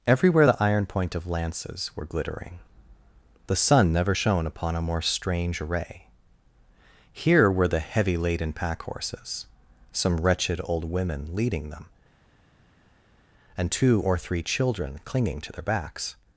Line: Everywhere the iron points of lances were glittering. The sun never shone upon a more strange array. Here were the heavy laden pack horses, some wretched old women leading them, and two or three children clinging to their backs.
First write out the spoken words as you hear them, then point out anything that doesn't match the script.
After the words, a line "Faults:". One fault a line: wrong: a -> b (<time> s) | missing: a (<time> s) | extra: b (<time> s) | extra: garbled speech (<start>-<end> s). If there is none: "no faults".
Everywhere the iron point of lances were glittering. The sun never shone upon a more strange array. Here were the heavy laden pack horses, some wretched old women leading them, and two or three children clinging to their backs.
Faults:
wrong: points -> point (0.9 s)